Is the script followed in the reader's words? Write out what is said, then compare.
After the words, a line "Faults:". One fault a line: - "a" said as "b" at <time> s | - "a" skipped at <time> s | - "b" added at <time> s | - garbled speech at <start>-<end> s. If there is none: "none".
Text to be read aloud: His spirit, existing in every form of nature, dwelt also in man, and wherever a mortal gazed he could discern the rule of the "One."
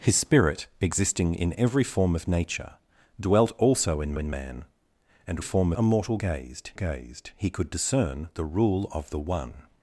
His spirit, existing in every form of nature, dwelt also in in man, and form a mortal gazed gazed he could discern the rule of the "One."
Faults:
- "in" added at 4.2 s
- "wherever" said as "form" at 5.4 s
- "gazed" added at 6.7 s